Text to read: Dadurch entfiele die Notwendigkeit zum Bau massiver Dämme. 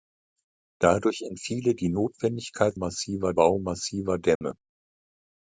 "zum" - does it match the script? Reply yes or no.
no